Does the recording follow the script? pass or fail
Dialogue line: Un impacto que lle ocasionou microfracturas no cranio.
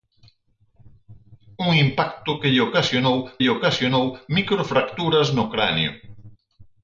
fail